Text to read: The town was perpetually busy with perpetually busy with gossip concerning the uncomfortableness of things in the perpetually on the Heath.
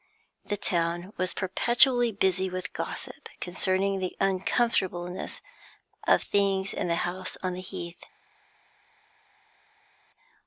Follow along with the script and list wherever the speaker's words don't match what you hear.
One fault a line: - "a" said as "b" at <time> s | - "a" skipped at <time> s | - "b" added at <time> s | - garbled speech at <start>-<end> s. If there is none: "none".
- "perpetually busy with" skipped at 2.7 s
- "perpetually" said as "house" at 7.0 s